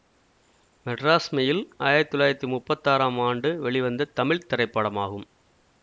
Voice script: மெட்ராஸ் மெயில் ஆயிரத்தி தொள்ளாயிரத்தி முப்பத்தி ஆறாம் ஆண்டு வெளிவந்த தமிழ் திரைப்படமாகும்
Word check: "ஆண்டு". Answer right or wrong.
right